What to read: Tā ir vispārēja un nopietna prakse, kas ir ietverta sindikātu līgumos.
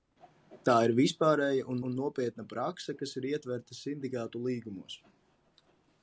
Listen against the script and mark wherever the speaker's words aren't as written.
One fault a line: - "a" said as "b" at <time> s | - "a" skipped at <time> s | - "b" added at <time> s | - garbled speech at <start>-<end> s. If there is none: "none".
- "un" added at 1.9 s